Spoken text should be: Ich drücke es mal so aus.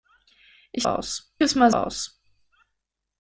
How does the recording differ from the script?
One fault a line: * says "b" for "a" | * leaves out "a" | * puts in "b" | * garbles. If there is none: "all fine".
* says "aus" for "drücke"
* leaves out "so"